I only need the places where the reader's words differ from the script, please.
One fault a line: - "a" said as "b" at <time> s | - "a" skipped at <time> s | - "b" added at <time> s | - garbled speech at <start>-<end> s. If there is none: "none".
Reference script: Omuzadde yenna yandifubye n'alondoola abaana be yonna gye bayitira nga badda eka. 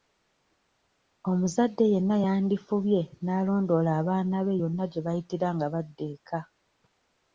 none